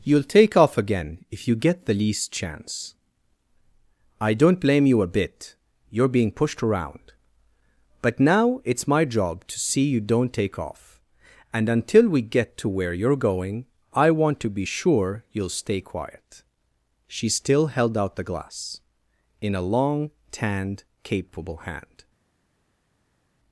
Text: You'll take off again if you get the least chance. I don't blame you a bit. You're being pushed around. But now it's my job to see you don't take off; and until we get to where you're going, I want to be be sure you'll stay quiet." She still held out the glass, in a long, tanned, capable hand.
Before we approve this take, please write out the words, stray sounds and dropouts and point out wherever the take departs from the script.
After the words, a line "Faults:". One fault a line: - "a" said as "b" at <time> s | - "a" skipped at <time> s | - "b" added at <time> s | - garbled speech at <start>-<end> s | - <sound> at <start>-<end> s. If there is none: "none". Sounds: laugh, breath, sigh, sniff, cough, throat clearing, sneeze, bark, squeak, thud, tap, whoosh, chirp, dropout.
You'll take off again if you get the least chance. I don't blame you a bit. You're being pushed around. But now it's my job to see you don't take off; and until we get to where you're going, I want to be sure you'll stay quiet." She still held out the glass, in a long, tanned, capable hand.
Faults:
- "be" skipped at 14.7 s